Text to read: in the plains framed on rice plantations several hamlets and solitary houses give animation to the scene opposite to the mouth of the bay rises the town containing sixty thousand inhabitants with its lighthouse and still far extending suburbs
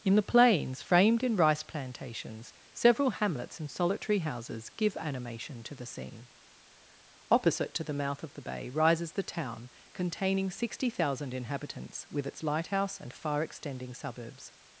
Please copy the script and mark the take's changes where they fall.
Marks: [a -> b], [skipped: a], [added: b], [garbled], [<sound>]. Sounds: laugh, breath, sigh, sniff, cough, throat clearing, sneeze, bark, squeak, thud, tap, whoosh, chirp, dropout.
in the plains framed [on -> in] rice plantations several hamlets and solitary houses give animation to the scene opposite to the mouth of the bay rises the town containing sixty thousand inhabitants with its lighthouse and [skipped: still] far extending suburbs